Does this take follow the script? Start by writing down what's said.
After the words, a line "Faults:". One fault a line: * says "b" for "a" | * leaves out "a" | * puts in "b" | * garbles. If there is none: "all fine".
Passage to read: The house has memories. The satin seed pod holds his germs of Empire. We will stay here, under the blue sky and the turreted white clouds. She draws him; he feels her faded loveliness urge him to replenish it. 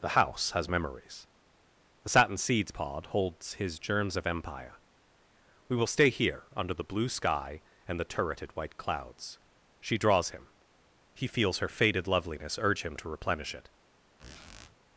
The house has memories. The satin seeds pod holds his germs of Empire. We will stay here, under the blue sky and the turreted white clouds. She draws him; he feels her faded loveliness urge him to replenish it.
Faults:
* says "seeds" for "seed"